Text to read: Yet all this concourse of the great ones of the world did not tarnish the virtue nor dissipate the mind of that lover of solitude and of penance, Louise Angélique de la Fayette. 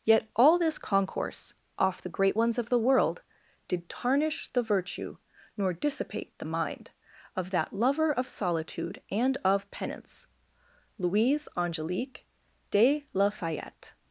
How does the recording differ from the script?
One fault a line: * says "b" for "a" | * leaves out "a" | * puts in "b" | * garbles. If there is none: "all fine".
* says "off" for "of"
* leaves out "not"